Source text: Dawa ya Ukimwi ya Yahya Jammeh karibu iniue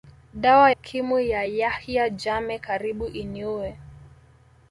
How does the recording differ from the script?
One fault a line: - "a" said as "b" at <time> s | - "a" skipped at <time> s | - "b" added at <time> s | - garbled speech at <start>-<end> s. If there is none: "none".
- "ya" skipped at 0.7 s